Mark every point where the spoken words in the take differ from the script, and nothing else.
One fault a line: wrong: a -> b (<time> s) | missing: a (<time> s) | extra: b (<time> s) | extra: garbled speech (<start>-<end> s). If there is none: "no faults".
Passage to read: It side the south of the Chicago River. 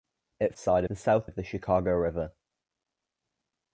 no faults